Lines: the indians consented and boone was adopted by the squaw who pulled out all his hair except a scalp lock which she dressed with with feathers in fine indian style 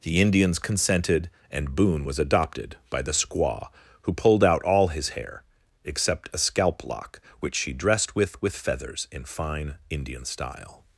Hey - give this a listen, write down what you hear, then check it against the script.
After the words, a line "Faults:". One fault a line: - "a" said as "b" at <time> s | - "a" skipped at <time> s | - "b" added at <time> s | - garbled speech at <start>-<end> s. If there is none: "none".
the indians consented and boone was adopted by the squaw who pulled out all his hair except a scalp lock which she dressed with with feathers in fine indian style
Faults:
none